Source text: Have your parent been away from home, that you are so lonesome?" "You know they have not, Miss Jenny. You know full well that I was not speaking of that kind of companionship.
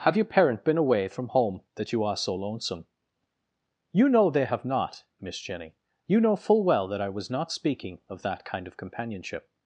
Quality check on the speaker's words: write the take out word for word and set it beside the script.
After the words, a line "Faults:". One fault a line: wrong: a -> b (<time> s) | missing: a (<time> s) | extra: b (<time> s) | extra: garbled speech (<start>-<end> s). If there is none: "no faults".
Have your parent been away from home, that you are so lonesome?" "You know they have not, Miss Jenny. You know full well that I was not speaking of that kind of companionship.
Faults:
no faults